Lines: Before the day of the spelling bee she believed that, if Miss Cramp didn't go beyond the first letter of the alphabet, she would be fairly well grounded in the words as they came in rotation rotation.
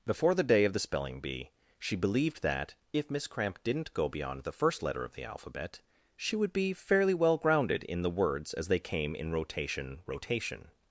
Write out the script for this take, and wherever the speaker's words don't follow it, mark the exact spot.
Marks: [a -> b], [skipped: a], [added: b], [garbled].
Before the day of the spelling bee she believed that, if Miss Cramp didn't go beyond the first letter of the alphabet, she would be fairly well grounded in the words as they came in rotation rotation.